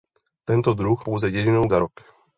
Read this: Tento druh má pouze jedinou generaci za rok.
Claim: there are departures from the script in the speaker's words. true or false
true